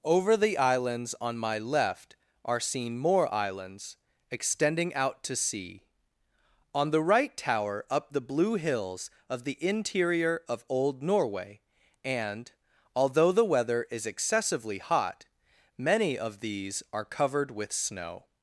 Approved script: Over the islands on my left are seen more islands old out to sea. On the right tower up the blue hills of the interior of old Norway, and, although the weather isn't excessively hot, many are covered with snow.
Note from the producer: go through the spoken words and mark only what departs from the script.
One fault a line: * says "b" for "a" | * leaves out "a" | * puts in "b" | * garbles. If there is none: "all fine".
* says "extending" for "old"
* says "is" for "isn't"
* puts in "of these"